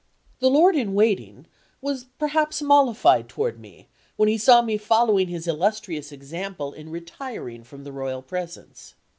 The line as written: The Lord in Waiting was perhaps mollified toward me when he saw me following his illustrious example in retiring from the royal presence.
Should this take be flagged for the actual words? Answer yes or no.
no